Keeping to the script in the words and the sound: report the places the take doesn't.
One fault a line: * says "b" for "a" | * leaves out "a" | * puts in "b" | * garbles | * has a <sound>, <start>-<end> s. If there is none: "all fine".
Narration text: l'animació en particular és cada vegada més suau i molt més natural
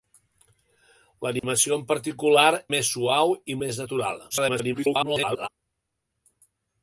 * has a dropout, 1.4-1.4 s
* leaves out "és cada vegada"
* leaves out "molt"
* garbles